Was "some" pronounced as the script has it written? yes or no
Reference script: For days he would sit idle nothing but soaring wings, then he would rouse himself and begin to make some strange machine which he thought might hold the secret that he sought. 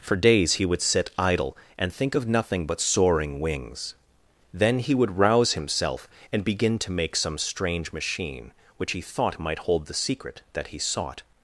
yes